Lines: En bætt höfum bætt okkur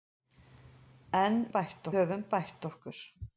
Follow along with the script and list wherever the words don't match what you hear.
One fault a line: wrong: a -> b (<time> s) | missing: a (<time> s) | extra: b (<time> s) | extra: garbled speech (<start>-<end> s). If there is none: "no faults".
no faults